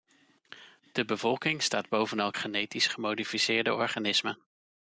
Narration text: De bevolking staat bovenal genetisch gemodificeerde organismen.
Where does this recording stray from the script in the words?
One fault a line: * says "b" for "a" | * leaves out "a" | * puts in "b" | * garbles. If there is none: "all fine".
all fine